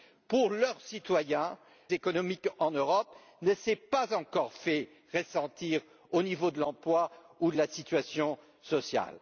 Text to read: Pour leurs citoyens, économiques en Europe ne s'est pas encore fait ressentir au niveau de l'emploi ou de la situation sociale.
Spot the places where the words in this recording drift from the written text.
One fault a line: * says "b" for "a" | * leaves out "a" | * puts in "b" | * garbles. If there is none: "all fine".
all fine